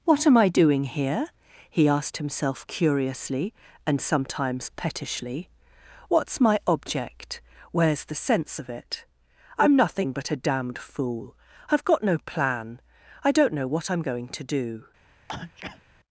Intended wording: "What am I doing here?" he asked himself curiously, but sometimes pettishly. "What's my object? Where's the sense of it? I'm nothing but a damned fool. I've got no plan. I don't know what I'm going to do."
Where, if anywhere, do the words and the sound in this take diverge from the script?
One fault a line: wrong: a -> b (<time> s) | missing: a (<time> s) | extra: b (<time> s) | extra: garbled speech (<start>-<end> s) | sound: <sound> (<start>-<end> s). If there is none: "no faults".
wrong: but -> and (3.9 s)
sound: sneeze (15.3-15.8 s)